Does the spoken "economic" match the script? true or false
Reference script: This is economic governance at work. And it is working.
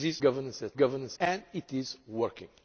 false